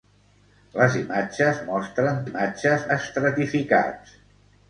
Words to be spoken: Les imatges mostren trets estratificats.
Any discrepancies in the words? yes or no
yes